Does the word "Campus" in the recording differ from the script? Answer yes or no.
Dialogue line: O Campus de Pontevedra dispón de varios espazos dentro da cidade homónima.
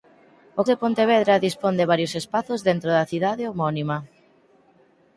yes